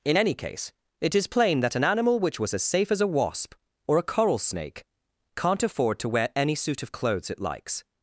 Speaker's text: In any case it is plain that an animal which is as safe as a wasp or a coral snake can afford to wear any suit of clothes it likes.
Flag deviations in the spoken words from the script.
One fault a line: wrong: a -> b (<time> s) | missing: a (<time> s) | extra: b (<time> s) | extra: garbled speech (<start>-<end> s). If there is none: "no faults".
wrong: is -> was (2.4 s)
wrong: can -> can't (5.4 s)